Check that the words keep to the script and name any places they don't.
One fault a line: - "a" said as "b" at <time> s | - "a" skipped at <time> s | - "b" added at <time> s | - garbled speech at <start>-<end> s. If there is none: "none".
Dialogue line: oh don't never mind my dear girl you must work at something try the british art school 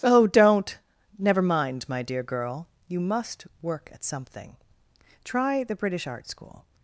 none